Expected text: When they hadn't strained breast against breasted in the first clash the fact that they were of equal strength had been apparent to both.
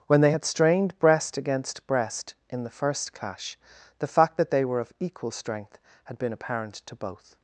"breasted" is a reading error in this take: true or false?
true